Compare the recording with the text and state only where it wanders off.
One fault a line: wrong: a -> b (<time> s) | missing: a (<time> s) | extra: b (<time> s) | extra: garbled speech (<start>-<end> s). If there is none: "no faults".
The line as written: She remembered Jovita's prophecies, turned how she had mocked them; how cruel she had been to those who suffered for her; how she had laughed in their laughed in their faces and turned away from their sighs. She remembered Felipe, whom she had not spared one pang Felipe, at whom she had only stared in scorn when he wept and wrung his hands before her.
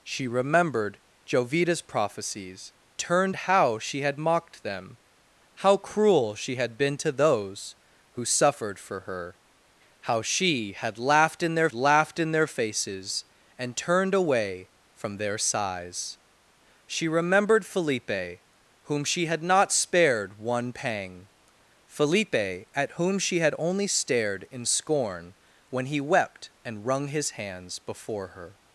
no faults